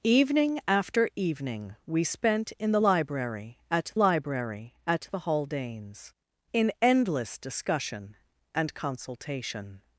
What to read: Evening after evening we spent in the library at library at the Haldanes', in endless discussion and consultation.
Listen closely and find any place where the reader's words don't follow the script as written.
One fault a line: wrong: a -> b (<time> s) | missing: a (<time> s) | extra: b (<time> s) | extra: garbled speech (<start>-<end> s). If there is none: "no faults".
no faults